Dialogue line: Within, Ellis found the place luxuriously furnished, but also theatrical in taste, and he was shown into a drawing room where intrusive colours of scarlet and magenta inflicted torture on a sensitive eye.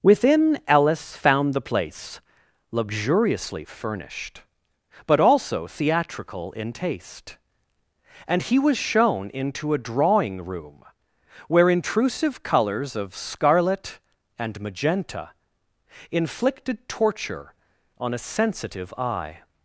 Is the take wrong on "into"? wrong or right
right